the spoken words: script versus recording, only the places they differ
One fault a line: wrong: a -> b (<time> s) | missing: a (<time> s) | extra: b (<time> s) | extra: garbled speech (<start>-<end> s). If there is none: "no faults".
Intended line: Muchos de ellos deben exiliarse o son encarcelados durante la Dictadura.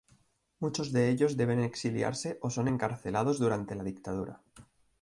no faults